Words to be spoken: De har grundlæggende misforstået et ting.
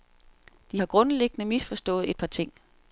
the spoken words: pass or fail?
fail